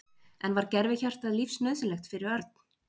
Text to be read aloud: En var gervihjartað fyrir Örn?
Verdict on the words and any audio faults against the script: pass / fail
fail